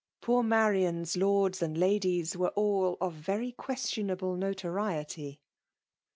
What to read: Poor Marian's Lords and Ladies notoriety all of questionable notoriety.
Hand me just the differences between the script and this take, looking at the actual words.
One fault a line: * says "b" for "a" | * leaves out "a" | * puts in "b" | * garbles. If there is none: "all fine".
* says "were" for "notoriety"
* puts in "very"